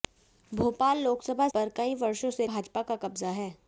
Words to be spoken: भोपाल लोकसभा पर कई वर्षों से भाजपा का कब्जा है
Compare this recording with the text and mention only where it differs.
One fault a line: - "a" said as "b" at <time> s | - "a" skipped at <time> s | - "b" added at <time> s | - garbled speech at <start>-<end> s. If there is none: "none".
none